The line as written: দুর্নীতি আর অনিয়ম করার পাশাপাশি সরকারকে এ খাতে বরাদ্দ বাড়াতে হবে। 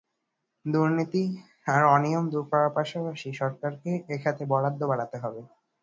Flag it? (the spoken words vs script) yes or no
yes